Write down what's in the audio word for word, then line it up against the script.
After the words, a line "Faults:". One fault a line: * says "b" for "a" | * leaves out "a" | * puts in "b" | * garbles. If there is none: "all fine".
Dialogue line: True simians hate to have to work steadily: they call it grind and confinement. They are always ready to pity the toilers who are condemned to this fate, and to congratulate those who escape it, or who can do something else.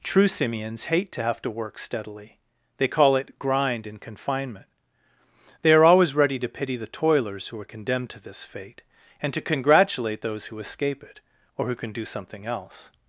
True simians hate to have to work steadily: they call it grind and confinement. They are always ready to pity the toilers who are condemned to this fate, and to congratulate those who escape it, or who can do something else.
Faults:
all fine